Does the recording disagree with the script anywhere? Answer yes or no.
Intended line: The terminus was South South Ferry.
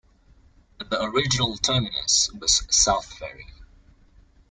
yes